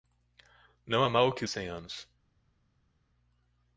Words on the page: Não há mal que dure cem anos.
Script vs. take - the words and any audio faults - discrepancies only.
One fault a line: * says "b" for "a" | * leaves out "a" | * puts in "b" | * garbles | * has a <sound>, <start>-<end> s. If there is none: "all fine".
* leaves out "dure"